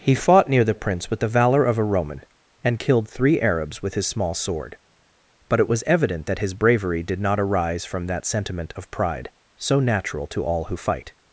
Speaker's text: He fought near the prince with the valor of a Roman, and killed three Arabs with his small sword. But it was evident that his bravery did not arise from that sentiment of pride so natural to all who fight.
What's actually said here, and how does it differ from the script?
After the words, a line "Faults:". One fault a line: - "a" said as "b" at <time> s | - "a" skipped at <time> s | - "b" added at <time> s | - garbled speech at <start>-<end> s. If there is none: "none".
He fought near the prince with the valor of a Roman, and killed three Arabs with his small sword. But it was evident that his bravery did not arise from that sentiment of pride so natural to all who fight.
Faults:
none